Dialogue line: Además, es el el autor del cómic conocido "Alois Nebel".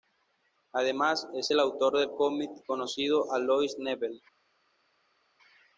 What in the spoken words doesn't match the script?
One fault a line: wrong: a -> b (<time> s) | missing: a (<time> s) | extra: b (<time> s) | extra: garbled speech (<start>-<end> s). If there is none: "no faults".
missing: el (1.6 s)